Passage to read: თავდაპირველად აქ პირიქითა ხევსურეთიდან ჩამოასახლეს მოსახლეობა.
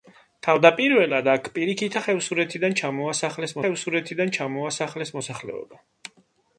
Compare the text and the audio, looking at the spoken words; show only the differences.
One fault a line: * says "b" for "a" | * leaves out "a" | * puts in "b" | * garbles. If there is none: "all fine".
* puts in "ხევსურეთიდან ჩამოასახლეს"